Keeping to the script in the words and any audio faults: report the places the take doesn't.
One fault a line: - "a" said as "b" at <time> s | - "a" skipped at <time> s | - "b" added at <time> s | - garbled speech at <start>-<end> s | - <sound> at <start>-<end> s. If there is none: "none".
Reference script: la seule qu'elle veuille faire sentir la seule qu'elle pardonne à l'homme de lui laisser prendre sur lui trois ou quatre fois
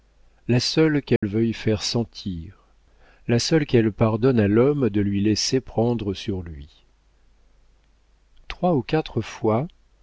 - dropout at 1.2-1.2 s